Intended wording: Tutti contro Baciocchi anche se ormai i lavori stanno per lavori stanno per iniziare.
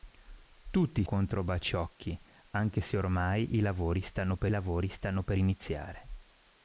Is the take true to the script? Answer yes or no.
yes